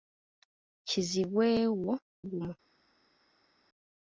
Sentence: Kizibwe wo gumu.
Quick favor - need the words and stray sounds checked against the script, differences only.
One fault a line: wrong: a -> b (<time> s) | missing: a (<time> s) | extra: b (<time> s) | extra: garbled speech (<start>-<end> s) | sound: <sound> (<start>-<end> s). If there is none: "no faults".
no faults